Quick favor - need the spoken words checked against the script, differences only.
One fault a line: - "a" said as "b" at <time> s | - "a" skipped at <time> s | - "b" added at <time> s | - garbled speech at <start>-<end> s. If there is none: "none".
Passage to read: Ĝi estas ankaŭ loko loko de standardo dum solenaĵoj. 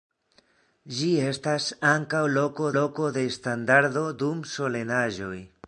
none